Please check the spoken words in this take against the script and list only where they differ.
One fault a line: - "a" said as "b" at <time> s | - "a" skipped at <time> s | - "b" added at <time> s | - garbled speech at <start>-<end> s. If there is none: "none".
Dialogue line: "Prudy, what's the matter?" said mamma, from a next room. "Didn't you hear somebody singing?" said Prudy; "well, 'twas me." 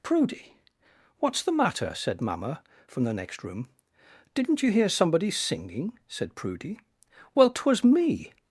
- "a" said as "the" at 3.0 s